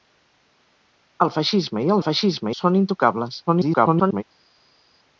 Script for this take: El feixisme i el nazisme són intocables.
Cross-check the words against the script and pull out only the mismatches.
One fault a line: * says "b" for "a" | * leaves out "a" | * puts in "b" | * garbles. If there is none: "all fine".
* says "feixisme" for "nazisme"
* garbles